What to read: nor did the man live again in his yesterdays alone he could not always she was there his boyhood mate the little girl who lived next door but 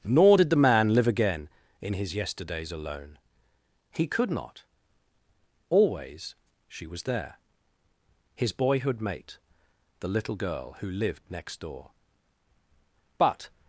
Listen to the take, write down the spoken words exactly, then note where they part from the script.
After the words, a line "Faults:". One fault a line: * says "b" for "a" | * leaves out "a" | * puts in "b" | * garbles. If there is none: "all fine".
nor did the man live again in his yesterdays alone he could not always she was there his boyhood mate the little girl who lived next door but
Faults:
all fine